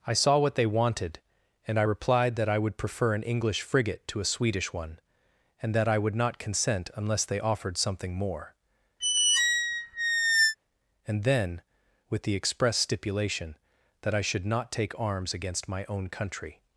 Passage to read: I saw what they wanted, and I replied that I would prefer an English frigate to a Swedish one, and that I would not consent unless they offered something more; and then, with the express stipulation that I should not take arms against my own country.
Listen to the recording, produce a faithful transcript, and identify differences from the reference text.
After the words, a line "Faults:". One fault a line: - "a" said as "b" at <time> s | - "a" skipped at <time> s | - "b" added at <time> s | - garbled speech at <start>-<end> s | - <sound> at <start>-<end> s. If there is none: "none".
I saw what they wanted, and I replied that I would prefer an English frigate to a Swedish one, and that I would not consent unless they offered something more; and then, with the express stipulation that I should not take arms against my own country.
Faults:
- squeak at 9.0-10.5 s